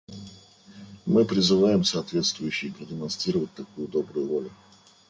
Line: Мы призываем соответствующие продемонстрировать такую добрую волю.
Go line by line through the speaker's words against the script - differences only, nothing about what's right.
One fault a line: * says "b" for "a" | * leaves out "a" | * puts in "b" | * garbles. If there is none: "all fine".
all fine